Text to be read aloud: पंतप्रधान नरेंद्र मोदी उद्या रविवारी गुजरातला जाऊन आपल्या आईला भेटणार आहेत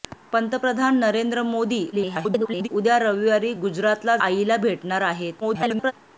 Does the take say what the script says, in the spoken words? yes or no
no